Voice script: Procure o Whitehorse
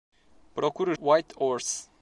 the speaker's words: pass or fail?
pass